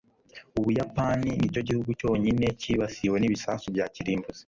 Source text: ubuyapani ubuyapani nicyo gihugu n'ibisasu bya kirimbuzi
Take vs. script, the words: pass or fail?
fail